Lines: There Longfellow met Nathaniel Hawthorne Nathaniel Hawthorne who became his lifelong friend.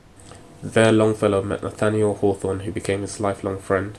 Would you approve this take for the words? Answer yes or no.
no